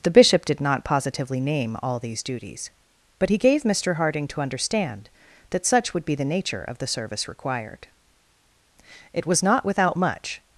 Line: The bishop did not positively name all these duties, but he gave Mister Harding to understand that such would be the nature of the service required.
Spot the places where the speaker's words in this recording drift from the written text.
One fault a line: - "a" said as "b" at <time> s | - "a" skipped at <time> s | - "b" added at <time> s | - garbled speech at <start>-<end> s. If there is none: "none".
- "It was not without much" added at 9.1 s